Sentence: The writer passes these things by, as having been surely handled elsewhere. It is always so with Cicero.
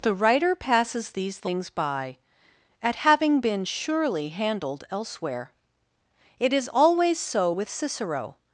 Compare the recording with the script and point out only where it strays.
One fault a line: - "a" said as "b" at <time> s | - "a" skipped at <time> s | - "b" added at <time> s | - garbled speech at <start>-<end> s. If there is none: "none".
- "as" said as "at" at 2.8 s